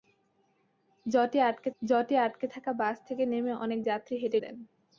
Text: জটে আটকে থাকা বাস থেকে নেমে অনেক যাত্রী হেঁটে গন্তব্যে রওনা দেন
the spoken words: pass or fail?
fail